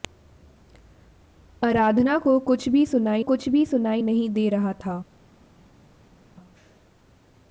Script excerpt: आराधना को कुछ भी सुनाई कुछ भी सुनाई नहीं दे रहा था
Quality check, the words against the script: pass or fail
pass